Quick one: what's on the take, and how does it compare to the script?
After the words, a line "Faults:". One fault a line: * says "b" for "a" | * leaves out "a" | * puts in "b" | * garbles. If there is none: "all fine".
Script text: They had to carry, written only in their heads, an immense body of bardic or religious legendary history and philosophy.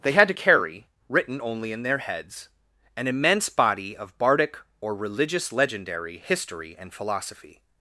They had to carry, written only in their heads, an immense body of bardic or religious legendary history and philosophy.
Faults:
all fine